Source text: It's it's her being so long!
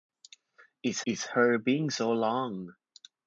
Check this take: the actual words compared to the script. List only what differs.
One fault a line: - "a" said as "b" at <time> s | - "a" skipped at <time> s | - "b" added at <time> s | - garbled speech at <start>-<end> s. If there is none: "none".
none